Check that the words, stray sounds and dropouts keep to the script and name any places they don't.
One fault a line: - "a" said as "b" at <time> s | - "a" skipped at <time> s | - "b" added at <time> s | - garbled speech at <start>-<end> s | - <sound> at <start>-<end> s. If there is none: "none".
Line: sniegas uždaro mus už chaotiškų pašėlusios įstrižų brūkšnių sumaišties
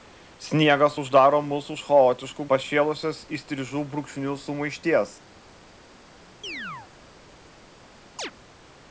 - chirp at 6.4-6.9 s
- chirp at 8.2-8.3 s